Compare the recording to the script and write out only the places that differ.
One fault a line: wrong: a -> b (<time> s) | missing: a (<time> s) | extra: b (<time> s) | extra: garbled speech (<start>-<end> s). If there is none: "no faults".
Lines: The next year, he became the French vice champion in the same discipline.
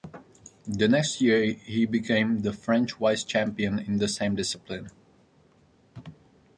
no faults